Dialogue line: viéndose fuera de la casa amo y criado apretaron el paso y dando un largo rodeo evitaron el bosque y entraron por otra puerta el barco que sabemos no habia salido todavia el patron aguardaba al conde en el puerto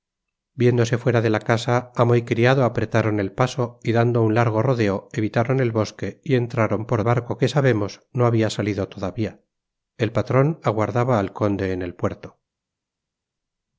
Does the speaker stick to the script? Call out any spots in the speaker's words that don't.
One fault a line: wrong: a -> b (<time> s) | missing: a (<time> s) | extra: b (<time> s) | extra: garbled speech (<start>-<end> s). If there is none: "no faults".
missing: otra puerta el (7.0 s)